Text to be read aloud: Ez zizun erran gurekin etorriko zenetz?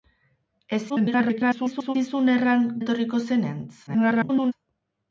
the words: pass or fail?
fail